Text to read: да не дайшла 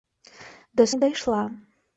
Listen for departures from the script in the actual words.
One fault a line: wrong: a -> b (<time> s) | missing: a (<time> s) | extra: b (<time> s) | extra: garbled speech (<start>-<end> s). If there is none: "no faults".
no faults